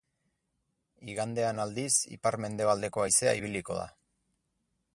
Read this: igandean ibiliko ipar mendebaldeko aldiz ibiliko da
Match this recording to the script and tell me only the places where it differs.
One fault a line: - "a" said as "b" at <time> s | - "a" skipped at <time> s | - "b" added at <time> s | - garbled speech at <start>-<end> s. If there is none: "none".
- "ibiliko" said as "aldiz" at 1.6 s
- "aldiz" said as "haizea" at 3.0 s